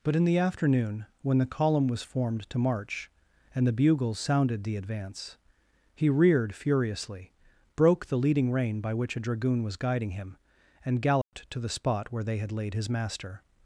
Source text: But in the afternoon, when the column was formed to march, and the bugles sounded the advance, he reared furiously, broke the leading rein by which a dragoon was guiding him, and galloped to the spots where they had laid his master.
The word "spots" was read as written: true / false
false